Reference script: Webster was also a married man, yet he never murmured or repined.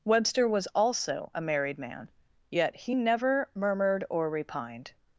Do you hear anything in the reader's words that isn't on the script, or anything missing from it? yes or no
no